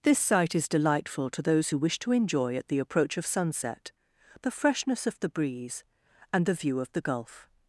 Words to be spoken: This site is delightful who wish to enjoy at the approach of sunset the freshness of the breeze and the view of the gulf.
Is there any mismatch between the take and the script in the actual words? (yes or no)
yes